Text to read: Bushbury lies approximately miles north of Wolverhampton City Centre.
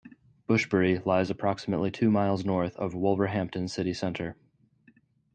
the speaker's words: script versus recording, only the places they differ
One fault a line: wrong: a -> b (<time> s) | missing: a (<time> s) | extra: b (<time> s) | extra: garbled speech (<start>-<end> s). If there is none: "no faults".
extra: two (1.9 s)